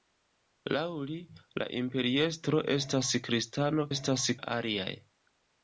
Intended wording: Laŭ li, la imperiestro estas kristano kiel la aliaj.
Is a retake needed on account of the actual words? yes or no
yes